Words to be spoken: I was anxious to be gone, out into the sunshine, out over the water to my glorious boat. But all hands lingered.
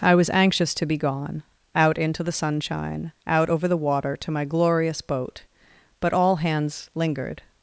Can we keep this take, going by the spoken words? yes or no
yes